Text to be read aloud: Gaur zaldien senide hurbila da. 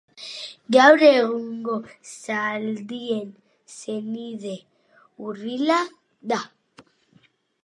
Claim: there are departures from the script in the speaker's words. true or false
true